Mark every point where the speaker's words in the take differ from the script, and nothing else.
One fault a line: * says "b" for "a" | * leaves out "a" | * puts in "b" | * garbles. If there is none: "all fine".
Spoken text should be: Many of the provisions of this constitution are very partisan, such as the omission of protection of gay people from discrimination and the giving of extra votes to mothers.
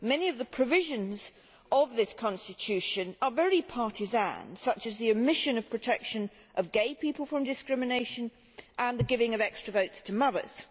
all fine